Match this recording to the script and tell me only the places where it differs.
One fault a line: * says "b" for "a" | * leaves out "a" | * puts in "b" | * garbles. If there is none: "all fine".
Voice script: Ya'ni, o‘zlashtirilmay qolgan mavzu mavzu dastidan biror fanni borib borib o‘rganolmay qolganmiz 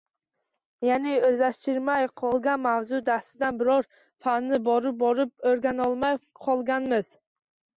* leaves out "mavzu"